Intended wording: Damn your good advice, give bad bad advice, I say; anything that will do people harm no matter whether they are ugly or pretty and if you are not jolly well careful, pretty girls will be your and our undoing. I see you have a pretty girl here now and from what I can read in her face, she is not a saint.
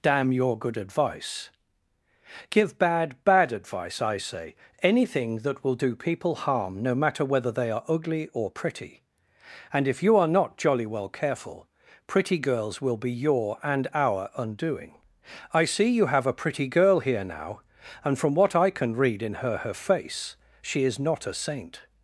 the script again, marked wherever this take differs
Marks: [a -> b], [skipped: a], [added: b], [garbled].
Damn your good advice, give bad bad advice, I say; anything that will do people harm no matter whether they are ugly or pretty and if you are not jolly well careful, pretty girls will be your and our undoing. I see you have a pretty girl here now and from what I can read in her [added: her] face, she is not a saint.